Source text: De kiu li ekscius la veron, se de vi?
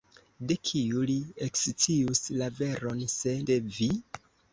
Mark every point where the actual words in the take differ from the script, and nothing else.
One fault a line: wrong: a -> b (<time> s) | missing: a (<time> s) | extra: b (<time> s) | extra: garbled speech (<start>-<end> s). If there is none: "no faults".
no faults